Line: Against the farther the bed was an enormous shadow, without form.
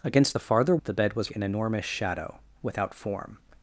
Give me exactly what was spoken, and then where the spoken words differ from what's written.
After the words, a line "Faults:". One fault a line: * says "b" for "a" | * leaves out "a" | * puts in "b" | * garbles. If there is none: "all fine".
Against the farther the bed was an enormous shadow, without form.
Faults:
all fine